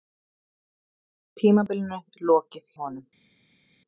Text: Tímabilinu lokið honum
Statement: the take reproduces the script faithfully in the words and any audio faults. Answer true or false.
true